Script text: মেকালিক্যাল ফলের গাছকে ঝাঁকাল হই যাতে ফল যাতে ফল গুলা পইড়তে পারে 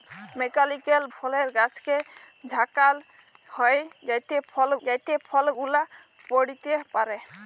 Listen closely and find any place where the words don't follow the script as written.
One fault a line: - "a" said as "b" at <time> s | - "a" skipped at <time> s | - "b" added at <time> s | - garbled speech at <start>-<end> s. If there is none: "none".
none